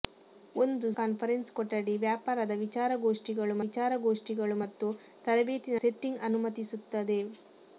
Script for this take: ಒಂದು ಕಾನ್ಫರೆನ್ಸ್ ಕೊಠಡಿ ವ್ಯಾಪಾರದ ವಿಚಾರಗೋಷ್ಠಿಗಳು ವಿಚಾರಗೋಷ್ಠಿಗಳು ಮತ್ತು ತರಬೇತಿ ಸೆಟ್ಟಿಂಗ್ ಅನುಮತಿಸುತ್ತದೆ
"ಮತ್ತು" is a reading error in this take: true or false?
false